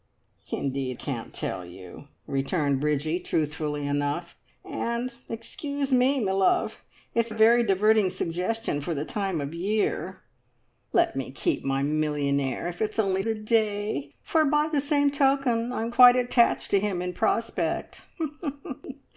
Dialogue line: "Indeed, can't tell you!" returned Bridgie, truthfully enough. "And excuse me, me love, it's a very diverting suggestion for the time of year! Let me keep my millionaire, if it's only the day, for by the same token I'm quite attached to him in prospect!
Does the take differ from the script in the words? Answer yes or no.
no